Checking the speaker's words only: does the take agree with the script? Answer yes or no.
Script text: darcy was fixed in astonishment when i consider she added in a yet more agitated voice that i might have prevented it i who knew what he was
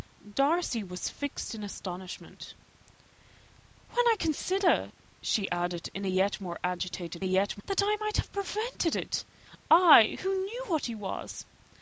no